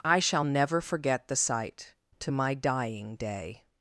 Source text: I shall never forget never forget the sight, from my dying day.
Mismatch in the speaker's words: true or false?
true